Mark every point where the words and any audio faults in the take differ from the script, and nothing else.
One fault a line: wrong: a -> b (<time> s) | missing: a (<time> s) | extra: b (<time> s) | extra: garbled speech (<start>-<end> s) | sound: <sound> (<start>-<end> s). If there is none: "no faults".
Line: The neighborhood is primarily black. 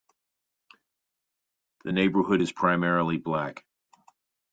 no faults